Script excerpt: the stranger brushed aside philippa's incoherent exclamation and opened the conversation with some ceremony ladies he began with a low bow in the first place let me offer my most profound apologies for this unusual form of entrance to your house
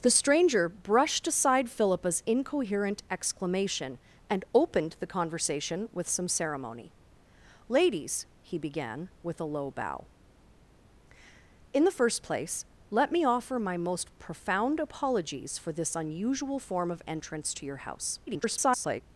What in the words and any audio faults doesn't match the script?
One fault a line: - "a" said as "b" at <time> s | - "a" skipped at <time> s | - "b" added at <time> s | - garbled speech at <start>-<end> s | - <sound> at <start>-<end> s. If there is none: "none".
- garbled speech at 18.3-19.0 s